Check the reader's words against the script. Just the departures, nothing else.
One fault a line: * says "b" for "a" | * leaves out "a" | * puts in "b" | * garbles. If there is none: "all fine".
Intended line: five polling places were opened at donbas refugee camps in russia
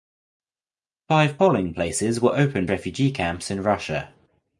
* leaves out "at donbas"